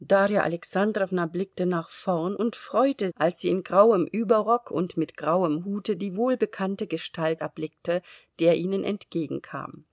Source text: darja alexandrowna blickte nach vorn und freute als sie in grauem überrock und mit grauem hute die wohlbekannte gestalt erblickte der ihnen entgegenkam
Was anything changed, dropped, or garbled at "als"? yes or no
no